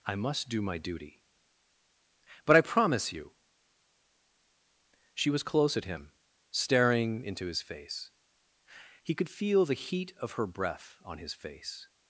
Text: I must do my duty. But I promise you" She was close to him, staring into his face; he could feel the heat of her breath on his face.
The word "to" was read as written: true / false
false